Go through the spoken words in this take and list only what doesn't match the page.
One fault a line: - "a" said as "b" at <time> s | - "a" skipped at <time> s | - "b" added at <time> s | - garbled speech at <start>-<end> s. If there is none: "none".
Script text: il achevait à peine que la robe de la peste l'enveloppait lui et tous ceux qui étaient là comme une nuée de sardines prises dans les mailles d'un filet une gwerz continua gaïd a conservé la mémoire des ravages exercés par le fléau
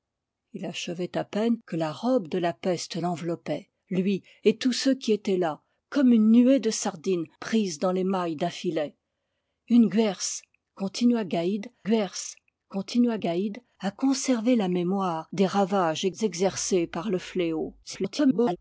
- "gwerz continua gaïd" added at 11.8 s
- garbled speech at 17.8-18.6 s